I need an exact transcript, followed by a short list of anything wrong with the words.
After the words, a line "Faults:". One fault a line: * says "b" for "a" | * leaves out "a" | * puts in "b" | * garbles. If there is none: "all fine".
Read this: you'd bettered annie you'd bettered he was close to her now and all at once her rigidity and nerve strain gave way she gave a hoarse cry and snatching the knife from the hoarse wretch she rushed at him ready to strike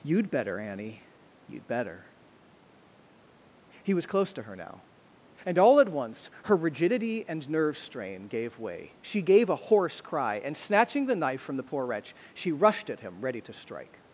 you'd better annie you'd better he was close to her now and all at once her rigidity and nerve strain gave way she gave a hoarse cry and snatching the knife from the poor wretch she rushed at him ready to strike
Faults:
* says "better" for "bettered"
* says "better" for "bettered"
* says "poor" for "hoarse"